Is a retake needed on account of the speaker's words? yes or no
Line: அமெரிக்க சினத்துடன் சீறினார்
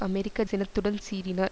no